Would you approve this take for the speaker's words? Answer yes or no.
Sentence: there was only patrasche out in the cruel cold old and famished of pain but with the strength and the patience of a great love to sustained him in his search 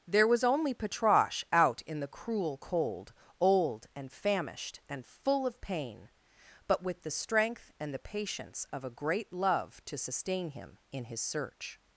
no